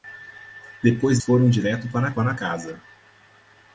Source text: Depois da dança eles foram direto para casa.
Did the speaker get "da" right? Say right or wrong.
wrong